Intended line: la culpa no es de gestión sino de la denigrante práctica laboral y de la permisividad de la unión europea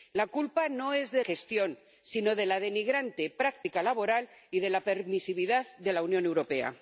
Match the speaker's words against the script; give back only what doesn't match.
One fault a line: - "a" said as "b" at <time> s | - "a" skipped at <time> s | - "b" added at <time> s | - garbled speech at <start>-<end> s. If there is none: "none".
none